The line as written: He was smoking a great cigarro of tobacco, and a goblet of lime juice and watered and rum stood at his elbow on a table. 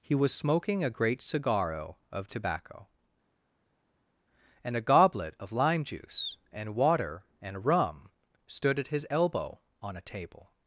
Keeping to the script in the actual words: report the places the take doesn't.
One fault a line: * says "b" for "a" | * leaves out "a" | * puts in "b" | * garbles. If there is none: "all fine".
* says "water" for "watered"